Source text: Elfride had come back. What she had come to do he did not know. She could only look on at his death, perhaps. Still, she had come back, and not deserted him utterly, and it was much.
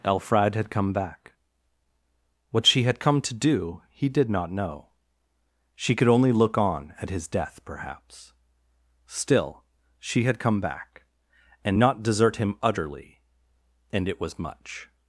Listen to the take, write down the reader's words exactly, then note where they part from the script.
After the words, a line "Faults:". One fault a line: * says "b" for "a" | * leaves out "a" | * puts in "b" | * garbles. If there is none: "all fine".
Elfride had come back. What she had come to do he did not know. She could only look on at his death, perhaps. Still, she had come back, and not desert him utterly, and it was much.
Faults:
* says "desert" for "deserted"